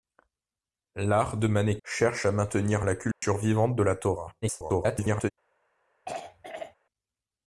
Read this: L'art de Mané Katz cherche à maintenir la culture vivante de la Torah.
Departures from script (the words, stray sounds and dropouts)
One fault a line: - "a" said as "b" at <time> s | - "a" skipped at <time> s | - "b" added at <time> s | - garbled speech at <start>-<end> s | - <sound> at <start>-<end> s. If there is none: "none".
- "Katz" skipped at 1.8 s
- dropout at 3.1-3.2 s
- garbled speech at 4.4-5.3 s
- throat clearing at 6.1-6.8 s